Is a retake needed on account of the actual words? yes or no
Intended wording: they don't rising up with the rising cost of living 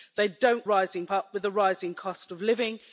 no